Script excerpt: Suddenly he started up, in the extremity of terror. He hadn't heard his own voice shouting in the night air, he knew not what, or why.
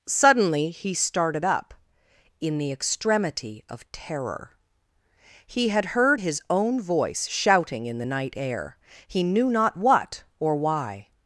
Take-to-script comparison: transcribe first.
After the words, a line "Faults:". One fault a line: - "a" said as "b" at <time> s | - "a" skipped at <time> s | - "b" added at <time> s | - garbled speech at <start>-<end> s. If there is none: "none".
Suddenly he started up, in the extremity of terror. He had heard his own voice shouting in the night air, he knew not what, or why.
Faults:
- "hadn't" said as "had" at 5.7 s